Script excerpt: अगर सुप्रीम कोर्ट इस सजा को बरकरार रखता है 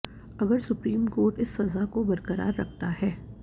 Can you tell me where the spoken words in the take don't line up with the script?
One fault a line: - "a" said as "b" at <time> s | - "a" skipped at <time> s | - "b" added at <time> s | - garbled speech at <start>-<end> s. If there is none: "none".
none